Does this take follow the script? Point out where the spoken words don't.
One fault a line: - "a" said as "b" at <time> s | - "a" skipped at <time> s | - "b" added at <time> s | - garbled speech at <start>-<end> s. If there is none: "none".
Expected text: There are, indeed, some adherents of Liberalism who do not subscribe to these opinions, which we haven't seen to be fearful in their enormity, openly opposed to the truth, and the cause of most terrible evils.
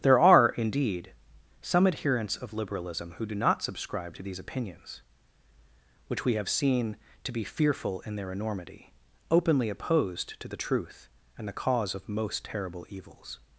- "haven't" said as "have" at 6.4 s